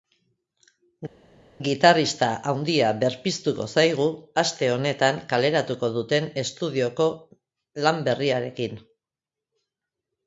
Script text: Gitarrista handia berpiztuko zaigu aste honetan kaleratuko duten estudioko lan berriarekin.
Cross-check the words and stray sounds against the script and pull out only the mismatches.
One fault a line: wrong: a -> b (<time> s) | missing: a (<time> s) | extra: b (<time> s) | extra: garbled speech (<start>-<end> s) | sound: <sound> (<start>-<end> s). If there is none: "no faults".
no faults